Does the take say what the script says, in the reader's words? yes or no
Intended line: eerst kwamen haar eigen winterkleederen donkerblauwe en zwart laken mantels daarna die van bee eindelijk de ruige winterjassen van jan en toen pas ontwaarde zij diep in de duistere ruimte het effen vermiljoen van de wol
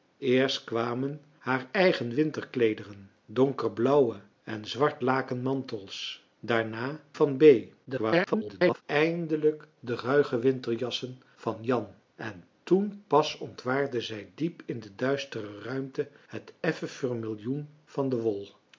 no